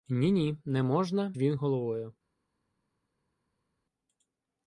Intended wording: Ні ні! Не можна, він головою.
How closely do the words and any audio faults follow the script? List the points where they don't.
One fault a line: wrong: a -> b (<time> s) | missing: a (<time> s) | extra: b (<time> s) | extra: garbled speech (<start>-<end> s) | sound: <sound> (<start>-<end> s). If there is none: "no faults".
no faults